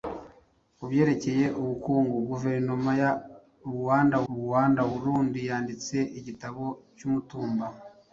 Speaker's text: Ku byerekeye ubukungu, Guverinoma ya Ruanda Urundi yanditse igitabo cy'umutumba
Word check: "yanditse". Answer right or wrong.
right